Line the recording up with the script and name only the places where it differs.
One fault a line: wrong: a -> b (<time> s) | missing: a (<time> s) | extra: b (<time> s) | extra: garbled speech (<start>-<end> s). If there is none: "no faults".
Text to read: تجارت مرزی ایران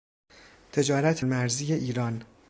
no faults